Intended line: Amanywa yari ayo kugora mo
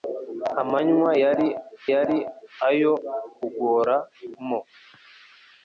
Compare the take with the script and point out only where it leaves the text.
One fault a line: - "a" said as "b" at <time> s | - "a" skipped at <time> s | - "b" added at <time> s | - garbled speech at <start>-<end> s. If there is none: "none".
- "yari" added at 1.9 s